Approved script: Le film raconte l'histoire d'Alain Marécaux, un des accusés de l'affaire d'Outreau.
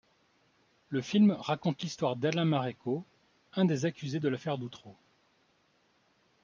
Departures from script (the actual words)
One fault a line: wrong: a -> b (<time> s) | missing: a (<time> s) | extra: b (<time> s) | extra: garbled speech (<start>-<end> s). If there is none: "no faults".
no faults